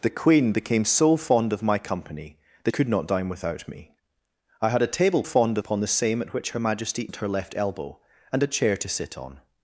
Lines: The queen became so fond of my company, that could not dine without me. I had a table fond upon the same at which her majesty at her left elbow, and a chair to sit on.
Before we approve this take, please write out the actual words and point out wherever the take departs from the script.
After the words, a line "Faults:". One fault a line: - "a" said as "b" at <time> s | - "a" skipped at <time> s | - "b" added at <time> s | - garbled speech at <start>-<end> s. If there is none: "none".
The queen became so fond of my company, that could not dine without me. I had a table fond upon the same at which her majesty at her left elbow, and a chair to sit on.
Faults:
none